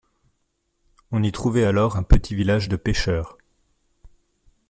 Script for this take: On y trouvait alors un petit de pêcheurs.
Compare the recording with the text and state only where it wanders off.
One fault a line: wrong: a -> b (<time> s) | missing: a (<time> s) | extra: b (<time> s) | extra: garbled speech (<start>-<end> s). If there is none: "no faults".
extra: village (2.3 s)